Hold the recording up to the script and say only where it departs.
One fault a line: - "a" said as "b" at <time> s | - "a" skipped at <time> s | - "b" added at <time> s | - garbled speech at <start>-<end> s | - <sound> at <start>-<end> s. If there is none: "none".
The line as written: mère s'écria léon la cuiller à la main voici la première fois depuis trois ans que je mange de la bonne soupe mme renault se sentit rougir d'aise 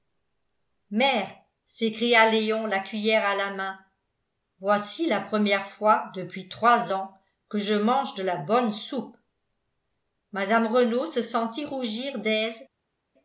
none